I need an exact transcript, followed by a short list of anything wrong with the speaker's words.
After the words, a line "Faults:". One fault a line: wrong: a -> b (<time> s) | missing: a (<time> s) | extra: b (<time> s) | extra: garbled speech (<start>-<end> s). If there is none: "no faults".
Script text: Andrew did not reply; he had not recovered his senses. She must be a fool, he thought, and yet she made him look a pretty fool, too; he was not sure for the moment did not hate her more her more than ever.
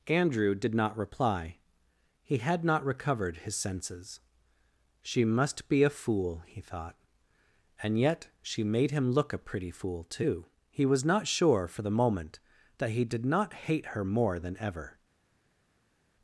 Andrew did not reply; he had not recovered his senses. She must be a fool, he thought, and yet she made him look a pretty fool, too; he was not sure for the moment that he did not hate her more than ever.
Faults:
extra: that he (12.8 s)
missing: her more (14.4 s)